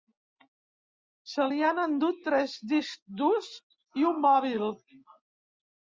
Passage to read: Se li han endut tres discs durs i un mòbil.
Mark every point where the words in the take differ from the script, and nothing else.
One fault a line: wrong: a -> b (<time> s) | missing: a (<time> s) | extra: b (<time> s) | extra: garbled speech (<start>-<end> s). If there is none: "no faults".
no faults